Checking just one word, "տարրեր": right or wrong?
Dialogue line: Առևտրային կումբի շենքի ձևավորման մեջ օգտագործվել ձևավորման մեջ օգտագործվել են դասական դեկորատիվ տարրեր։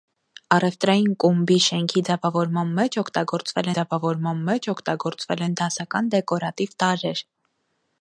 right